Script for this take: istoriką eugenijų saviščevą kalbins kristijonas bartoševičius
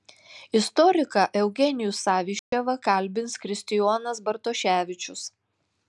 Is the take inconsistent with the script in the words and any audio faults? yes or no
yes